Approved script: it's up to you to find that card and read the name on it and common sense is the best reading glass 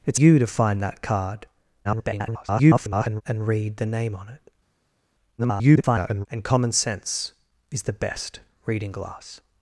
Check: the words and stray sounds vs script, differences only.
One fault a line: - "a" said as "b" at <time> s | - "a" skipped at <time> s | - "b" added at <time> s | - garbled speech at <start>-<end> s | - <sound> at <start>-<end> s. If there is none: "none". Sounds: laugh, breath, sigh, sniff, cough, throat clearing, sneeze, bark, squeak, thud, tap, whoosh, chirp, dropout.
- "up to" skipped at 0.2 s
- garbled speech at 1.8-3.2 s
- garbled speech at 5.4-6.3 s